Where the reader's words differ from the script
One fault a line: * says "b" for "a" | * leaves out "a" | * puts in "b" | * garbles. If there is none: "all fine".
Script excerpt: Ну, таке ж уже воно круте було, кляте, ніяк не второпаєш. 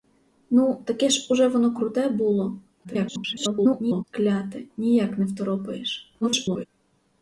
* garbles
* garbles